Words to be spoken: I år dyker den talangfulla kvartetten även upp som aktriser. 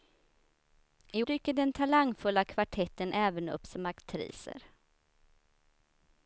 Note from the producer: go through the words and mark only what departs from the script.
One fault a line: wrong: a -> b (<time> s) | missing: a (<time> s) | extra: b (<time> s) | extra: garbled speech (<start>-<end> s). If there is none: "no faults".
missing: år (1.2 s)